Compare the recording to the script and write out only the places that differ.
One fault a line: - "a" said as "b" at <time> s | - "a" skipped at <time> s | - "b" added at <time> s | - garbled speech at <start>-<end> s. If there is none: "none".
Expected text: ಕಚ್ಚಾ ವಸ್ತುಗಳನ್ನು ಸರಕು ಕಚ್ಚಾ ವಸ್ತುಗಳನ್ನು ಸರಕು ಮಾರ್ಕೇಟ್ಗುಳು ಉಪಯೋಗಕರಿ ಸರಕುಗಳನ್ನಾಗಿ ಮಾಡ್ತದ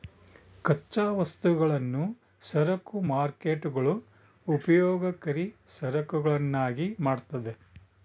- "ಕಚ್ಚಾ ವಸ್ತುಗಳನ್ನು ಸರಕು" skipped at 3.0 s